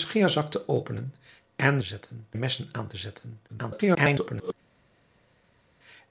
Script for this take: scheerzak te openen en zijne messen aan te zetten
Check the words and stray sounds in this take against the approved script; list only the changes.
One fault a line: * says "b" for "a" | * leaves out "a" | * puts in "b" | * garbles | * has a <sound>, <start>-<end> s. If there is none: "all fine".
* says "zetten" for "zijne"
* garbles